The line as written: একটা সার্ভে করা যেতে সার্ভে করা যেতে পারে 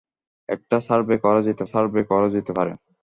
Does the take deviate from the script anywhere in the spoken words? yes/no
no